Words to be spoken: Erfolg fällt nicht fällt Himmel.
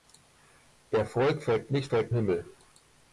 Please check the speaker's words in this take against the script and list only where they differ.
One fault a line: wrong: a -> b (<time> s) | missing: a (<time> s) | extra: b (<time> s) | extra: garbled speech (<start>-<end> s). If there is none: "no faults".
no faults